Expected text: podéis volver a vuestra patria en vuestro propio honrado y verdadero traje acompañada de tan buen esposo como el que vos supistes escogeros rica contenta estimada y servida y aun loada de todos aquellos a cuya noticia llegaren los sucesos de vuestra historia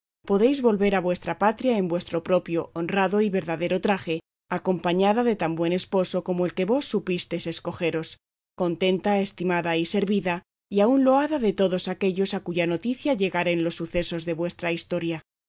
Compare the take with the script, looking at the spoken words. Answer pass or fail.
fail